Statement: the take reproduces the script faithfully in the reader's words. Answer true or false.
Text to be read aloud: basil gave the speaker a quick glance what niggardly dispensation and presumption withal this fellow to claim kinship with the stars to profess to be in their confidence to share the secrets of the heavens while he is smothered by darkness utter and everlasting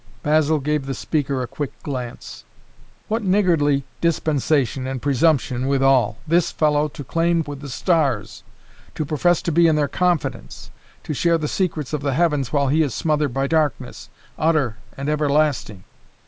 false